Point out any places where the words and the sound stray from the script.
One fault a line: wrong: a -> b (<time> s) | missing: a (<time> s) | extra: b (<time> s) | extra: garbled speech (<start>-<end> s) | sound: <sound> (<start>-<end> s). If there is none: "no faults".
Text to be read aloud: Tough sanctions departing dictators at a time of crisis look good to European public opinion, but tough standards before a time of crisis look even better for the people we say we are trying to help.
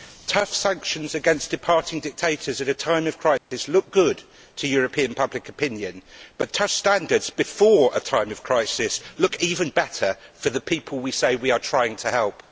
extra: against (1.1 s)
sound: dropout (3.4-3.5 s)